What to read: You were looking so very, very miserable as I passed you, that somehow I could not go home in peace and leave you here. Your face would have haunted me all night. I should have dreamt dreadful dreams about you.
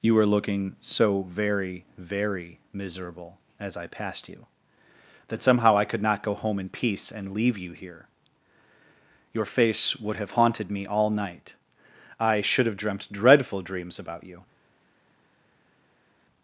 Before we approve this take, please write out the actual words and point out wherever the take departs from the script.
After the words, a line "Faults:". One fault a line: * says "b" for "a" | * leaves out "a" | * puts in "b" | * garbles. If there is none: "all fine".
You were looking so very, very miserable as I passed you, that somehow I could not go home in peace and leave you here. Your face would have haunted me all night. I should have dreamt dreadful dreams about you.
Faults:
all fine